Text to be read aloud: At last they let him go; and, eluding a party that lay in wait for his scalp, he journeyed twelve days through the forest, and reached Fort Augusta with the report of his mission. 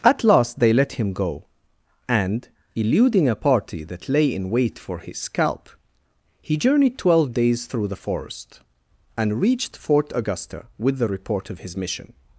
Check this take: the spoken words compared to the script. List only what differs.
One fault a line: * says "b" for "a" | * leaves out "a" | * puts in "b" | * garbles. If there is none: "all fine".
all fine